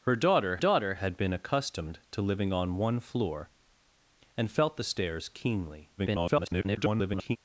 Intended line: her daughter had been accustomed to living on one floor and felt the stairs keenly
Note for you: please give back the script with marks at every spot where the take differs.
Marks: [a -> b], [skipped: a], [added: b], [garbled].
her daughter [added: daughter] had been accustomed to living on one floor and felt the stairs keenly [garbled]